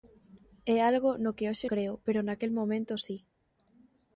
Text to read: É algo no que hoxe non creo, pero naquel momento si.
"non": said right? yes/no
no